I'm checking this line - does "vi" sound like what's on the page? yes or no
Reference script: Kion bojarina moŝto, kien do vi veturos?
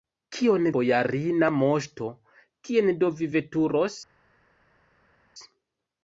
yes